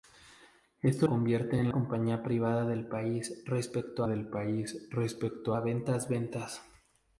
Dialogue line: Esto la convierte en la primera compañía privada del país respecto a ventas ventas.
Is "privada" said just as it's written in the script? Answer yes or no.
no